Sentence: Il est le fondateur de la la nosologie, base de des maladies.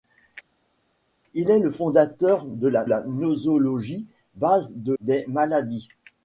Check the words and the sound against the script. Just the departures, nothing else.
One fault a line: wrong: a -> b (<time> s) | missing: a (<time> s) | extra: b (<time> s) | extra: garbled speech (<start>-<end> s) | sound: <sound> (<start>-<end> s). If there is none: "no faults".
no faults